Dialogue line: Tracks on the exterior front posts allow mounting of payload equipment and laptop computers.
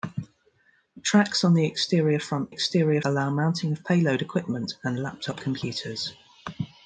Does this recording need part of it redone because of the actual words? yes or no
yes